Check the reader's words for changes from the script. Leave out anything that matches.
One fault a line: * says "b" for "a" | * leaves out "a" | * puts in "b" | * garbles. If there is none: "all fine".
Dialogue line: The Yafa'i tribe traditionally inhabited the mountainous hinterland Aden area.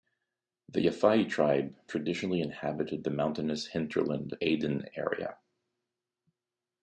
all fine